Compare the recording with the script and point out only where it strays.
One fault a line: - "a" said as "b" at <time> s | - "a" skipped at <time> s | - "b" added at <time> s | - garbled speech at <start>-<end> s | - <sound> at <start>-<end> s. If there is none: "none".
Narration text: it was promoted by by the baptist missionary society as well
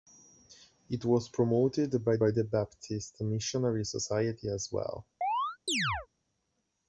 - chirp at 5.2-6.1 s